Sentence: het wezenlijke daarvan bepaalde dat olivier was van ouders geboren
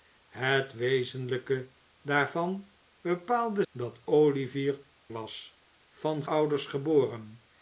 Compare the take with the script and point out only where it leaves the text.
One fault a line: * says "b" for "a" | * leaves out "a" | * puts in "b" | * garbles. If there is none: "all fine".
all fine